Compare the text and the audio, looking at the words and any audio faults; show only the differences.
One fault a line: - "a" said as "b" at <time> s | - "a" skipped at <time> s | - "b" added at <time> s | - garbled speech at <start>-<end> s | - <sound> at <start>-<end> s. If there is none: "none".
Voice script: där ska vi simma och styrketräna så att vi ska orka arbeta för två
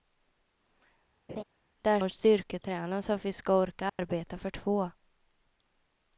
- laugh at 1.3-1.4 s
- "ska vi simma" skipped at 2.0 s
- dropout at 3.9-4.0 s